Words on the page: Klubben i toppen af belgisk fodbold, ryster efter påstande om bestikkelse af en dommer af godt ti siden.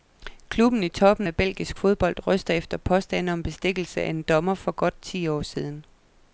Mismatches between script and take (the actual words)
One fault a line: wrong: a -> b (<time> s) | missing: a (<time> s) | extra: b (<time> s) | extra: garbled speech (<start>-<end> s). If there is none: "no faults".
wrong: af -> for (4.5 s)
extra: år (5.3 s)